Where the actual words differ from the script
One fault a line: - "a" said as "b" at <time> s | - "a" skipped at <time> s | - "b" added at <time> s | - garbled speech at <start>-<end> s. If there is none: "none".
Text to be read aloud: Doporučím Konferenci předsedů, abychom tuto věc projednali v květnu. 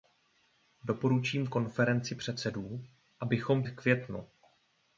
- "tuto věc projednali" skipped at 3.6 s